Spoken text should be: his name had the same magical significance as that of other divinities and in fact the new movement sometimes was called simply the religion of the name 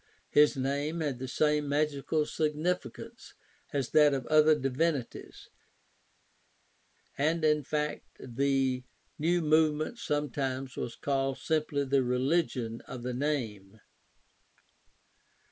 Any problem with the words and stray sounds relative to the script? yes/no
no